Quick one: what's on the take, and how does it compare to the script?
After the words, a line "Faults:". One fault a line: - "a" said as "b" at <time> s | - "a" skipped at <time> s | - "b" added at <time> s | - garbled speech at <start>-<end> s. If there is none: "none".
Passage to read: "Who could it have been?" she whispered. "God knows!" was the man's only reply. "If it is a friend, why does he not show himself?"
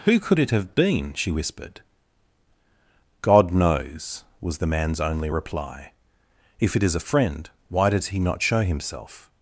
"Who could it have been?" she whispered. "God knows!" was the man's only reply. "If it is a friend, why does he not show himself?"
Faults:
none